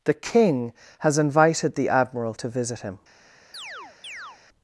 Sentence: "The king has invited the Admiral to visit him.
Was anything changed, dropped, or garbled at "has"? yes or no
no